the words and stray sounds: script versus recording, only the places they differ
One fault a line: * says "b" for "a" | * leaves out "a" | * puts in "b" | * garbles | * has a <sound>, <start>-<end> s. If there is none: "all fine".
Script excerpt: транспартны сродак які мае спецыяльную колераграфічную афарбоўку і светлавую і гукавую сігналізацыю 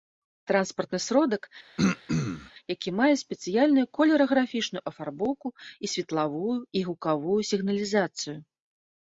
* has a throat clearing, 1.8-2.5 s